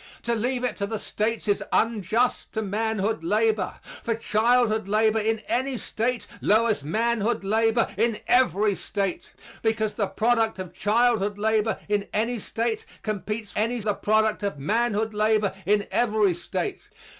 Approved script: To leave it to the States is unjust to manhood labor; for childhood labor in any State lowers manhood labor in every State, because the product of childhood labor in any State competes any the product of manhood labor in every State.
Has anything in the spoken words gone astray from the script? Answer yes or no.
no